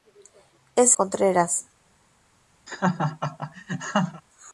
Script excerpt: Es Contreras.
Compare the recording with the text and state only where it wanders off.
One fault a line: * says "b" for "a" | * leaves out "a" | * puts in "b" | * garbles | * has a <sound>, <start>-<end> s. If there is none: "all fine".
* has a laugh, 2.7-4.2 s